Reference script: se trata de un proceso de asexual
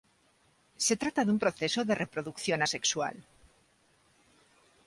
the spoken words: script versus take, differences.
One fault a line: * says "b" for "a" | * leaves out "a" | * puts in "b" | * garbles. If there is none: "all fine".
* puts in "reproducción"